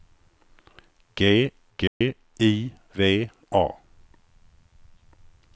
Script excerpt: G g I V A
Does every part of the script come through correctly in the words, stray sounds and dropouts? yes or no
no